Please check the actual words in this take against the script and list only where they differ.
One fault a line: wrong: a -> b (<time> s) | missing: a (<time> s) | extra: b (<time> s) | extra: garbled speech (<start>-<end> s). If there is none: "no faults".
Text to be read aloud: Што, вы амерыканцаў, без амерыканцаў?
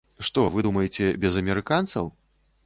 wrong: амерыканцаў -> думаеце (0.7 s)